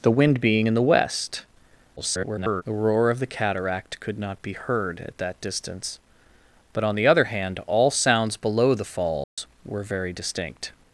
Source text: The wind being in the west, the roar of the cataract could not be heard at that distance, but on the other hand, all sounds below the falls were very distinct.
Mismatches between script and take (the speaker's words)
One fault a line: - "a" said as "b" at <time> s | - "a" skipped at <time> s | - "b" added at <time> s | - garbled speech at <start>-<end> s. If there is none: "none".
- garbled speech at 2.0-2.6 s